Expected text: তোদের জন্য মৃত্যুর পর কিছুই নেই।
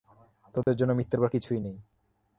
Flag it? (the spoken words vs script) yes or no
no